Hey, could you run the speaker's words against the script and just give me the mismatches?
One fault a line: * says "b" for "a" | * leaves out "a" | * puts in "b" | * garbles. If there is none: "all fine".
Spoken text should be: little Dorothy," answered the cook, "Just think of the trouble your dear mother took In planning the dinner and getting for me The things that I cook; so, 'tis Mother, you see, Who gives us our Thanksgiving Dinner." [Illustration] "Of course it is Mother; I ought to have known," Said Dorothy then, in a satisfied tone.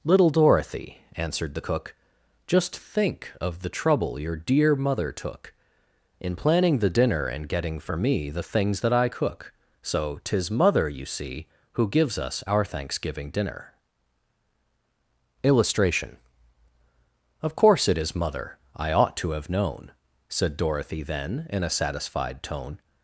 all fine